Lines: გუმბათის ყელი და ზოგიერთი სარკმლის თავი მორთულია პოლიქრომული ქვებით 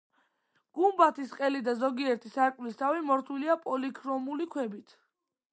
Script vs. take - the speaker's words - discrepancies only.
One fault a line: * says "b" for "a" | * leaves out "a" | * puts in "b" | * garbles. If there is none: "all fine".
all fine